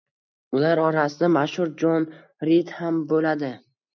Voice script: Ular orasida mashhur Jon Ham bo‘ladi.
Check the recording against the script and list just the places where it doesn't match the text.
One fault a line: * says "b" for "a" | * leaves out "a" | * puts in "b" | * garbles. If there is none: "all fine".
* puts in "Rid"